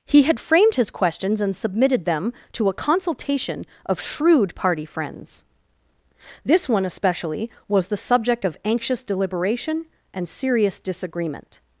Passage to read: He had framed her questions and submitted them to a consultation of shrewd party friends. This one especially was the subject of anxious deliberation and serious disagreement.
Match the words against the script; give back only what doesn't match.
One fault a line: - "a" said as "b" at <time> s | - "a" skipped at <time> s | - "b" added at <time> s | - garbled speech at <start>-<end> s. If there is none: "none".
- "her" said as "his" at 0.8 s